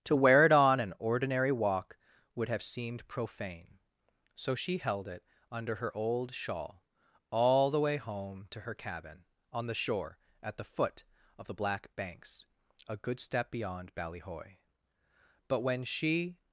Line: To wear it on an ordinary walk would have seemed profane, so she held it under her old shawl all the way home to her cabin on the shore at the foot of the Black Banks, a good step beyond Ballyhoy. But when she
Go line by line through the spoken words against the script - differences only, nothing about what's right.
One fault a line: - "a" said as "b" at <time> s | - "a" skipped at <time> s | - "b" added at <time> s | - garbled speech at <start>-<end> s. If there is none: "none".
none